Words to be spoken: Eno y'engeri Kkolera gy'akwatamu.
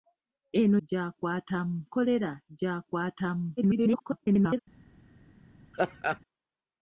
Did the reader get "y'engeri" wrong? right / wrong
wrong